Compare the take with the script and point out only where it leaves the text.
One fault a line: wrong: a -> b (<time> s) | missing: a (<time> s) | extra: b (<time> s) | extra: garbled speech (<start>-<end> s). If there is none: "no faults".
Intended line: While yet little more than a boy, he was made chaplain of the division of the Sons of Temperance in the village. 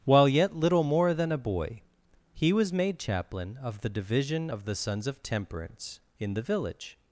no faults